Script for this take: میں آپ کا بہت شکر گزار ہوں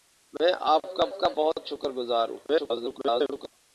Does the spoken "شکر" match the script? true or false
true